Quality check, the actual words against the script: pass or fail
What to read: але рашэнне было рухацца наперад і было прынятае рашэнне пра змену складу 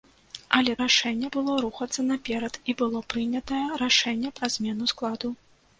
pass